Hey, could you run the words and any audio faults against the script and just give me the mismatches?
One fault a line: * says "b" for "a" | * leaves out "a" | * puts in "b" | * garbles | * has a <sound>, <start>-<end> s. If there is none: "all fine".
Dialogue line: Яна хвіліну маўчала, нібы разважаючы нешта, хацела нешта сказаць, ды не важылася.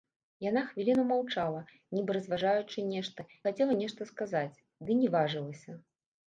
all fine